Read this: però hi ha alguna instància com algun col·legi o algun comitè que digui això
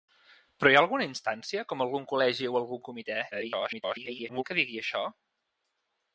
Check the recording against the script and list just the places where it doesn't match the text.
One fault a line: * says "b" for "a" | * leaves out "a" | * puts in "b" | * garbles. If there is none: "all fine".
* garbles